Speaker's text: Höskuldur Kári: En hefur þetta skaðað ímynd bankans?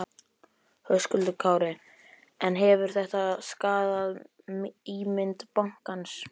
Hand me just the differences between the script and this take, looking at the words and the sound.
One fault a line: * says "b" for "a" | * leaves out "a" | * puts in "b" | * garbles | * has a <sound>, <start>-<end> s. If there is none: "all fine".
all fine